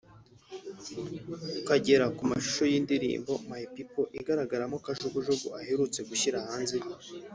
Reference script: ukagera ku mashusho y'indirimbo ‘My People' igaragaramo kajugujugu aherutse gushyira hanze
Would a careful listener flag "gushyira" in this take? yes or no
no